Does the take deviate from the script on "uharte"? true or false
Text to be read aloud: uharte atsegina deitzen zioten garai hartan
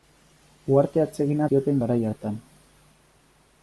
false